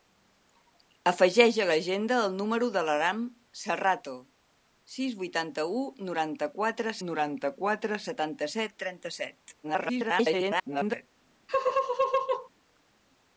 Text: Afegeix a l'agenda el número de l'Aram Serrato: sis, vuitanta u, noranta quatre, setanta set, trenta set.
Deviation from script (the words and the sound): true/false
true